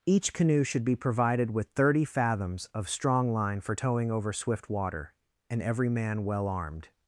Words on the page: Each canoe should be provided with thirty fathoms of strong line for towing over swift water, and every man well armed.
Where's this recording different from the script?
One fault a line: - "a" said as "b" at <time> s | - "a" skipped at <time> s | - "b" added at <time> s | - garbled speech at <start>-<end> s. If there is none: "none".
none